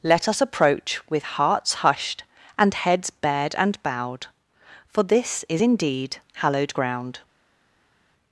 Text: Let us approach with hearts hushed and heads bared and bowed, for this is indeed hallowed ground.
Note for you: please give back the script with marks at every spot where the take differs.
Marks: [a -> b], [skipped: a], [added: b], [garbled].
Let us approach with hearts hushed and heads bared and bowed, for this is indeed hallowed ground.